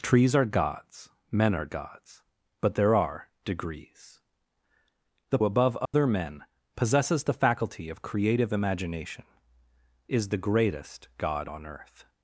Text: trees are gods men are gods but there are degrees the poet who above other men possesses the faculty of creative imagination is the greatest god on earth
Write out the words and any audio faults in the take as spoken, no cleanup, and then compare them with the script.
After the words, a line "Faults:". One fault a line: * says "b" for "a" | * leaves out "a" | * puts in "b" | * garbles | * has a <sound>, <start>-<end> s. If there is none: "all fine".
trees are gods men are gods but there are degrees the above other men possesses the faculty of creative imagination is the greatest god on earth
Faults:
* leaves out "poet who"
* has a dropout, 5.9-5.9 s